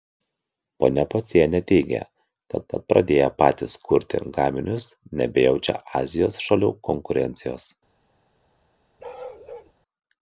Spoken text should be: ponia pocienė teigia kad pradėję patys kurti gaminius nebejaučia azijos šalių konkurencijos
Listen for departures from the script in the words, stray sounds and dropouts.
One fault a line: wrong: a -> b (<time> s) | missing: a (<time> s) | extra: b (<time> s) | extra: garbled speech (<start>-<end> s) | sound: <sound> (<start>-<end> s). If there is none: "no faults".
extra: kad (2.7 s)
sound: bark (9.0-9.7 s)